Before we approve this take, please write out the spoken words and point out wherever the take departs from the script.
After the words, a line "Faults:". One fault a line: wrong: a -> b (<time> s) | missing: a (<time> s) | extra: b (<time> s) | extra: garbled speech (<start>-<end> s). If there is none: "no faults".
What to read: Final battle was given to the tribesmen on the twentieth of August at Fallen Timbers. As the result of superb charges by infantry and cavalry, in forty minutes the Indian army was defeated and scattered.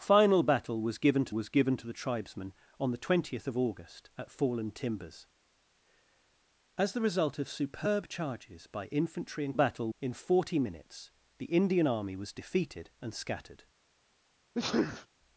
Final battle was given to was given to the tribesmen on the twentieth of August at Fallen Timbers. As the result of superb charges by infantry and battle, in forty minutes the Indian army was defeated and scattered.
Faults:
extra: was given to (1.3 s)
wrong: cavalry -> battle (9.5 s)